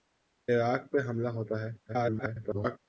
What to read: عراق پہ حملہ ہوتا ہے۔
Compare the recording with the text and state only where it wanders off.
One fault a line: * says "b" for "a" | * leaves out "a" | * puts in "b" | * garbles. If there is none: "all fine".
* garbles